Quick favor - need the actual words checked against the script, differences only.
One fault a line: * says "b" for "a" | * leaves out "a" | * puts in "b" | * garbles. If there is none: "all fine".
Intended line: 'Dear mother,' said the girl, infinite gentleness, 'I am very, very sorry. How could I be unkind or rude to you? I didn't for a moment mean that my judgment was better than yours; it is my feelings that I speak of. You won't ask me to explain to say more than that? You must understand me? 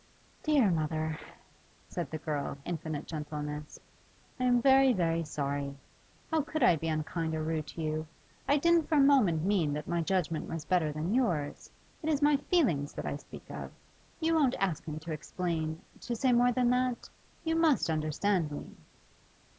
all fine